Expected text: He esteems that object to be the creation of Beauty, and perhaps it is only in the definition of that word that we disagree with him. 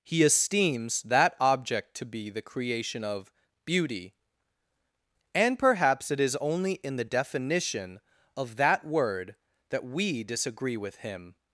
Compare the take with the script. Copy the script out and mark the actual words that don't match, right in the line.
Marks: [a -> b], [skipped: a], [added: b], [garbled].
He esteems that object to be the creation of Beauty, and perhaps it is only in the definition of that word that we disagree with him.